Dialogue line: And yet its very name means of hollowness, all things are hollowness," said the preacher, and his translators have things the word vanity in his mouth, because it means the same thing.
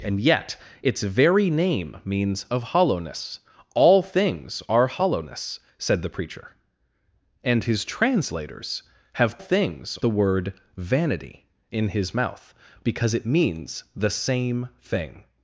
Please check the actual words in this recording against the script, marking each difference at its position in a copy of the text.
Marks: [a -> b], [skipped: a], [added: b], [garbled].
And yet its very name means of hollowness, all things are hollowness," said the preacher, and his translators have things the word vanity in his mouth, because it means the same thing.